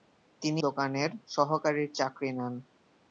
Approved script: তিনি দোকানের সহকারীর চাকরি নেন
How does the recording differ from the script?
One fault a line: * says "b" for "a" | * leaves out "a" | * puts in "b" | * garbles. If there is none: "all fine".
all fine